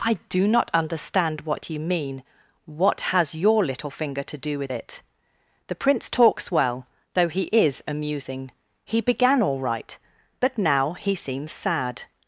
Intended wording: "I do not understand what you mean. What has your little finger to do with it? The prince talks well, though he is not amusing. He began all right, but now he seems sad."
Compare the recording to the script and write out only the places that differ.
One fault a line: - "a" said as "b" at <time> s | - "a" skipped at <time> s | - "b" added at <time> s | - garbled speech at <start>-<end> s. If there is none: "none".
- "not" skipped at 7.8 s